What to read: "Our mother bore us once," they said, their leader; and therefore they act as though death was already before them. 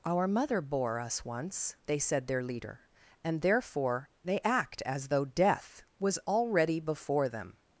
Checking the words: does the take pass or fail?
pass